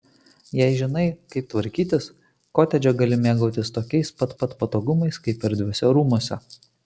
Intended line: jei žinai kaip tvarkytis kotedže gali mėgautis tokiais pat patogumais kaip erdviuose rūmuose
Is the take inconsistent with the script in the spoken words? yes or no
yes